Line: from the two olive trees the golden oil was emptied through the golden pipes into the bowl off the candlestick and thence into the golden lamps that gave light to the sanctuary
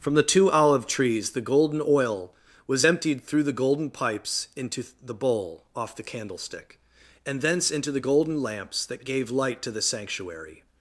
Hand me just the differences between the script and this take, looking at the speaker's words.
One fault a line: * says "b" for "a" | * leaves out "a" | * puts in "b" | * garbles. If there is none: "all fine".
all fine